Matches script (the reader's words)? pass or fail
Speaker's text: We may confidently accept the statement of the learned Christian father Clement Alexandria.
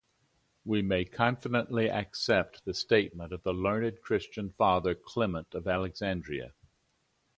fail